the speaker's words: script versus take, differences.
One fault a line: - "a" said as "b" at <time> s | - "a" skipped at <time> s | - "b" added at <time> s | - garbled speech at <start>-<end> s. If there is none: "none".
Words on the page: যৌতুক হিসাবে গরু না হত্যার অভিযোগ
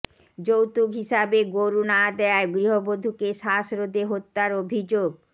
- "দেয়ায় গৃহবধূকে শ্বাসরোধে" added at 2.2 s